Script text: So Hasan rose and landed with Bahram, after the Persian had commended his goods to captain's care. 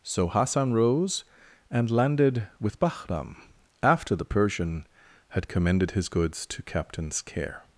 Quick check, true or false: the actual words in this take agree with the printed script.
true